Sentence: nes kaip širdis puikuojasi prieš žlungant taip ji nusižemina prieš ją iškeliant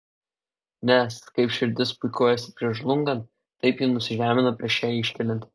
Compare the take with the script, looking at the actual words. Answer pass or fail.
pass